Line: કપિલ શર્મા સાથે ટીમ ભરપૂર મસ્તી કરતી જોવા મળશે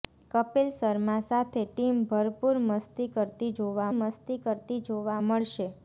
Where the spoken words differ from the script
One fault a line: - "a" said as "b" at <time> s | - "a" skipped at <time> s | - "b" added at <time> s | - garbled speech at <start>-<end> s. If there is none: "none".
- "મસ્તી કરતી જોવા" added at 3.9 s